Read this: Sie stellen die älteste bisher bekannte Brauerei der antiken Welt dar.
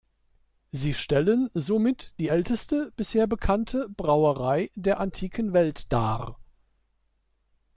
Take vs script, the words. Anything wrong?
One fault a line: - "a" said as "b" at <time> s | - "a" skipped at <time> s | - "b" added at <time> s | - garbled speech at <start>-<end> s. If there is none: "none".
- "somit" added at 1.5 s